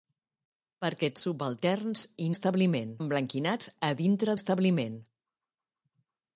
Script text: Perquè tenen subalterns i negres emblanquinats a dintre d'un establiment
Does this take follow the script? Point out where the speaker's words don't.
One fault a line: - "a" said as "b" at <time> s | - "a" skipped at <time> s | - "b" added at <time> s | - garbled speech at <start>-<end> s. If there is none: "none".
- "tenen" skipped at 1.1 s
- "negres" said as "establiment" at 2.3 s
- "d'un" skipped at 4.4 s